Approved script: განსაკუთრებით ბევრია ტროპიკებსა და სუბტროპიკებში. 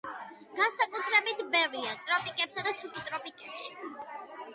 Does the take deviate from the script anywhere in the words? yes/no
no